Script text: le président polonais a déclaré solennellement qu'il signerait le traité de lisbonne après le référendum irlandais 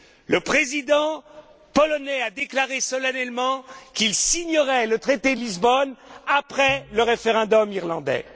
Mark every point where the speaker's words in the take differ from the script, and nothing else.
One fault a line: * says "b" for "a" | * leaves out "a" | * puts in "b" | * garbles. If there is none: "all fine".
all fine